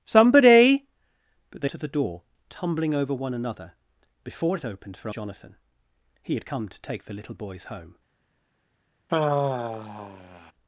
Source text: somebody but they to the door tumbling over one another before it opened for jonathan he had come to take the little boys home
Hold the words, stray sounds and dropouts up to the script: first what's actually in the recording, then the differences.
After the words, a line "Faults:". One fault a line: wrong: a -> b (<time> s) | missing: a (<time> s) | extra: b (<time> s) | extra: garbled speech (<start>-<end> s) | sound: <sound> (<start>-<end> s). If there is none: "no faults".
somebody but they to the door tumbling over one another before it opened for jonathan he had come to take the little boys home
Faults:
sound: sigh (9.1-10.5 s)